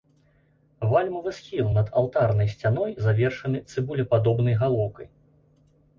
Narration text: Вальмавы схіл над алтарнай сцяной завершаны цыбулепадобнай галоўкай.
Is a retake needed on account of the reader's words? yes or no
no